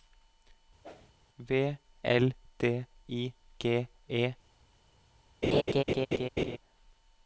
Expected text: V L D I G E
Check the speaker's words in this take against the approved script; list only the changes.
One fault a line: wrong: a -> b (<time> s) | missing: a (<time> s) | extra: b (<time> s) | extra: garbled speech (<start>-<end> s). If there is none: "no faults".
no faults